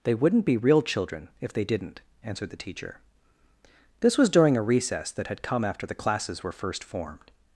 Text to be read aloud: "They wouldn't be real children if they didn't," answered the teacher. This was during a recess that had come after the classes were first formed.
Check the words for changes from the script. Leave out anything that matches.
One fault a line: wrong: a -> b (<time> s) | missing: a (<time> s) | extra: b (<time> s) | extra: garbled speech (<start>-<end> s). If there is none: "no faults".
no faults